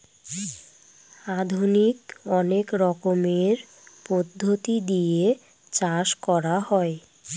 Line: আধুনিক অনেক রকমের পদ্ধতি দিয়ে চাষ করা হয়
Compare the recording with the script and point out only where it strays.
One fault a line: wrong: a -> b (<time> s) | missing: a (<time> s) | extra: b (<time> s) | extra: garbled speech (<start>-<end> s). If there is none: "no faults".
no faults